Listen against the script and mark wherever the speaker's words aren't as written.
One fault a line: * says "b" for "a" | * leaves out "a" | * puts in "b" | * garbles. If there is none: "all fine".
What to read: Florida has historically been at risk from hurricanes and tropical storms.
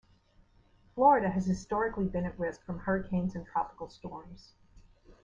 all fine